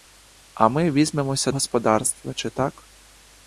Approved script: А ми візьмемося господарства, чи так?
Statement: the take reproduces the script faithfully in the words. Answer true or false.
true